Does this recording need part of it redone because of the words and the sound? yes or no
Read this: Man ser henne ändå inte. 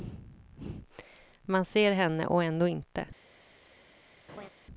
yes